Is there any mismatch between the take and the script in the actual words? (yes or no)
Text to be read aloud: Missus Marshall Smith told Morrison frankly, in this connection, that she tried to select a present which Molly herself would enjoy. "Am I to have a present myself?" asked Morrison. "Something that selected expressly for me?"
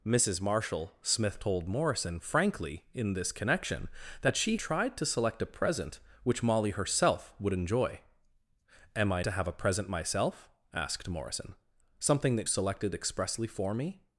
no